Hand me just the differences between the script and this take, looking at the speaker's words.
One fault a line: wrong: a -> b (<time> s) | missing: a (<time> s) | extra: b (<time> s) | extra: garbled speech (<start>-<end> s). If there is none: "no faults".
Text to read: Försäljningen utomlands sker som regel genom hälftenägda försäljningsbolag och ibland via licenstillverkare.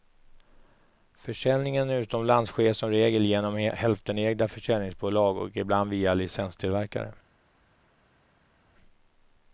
no faults